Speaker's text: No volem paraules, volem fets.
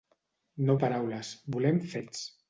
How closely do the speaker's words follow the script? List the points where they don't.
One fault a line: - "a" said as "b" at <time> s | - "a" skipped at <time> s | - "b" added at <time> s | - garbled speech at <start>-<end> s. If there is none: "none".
- "volem" skipped at 0.8 s